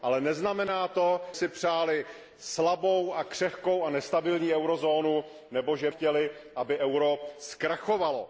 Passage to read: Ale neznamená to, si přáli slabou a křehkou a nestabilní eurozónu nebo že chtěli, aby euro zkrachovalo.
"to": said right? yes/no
yes